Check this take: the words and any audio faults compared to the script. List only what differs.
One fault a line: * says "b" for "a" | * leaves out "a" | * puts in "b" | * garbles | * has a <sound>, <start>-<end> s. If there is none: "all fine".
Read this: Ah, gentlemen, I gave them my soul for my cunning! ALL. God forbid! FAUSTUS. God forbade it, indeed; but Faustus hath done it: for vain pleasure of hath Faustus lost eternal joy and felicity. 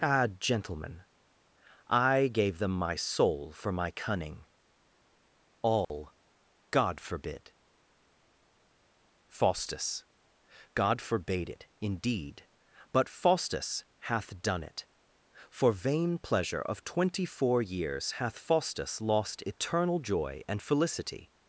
* has a dropout, 5.8-5.9 s
* puts in "twenty four years"